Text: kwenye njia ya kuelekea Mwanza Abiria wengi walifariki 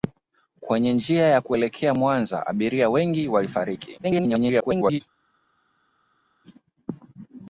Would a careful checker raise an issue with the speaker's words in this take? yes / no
yes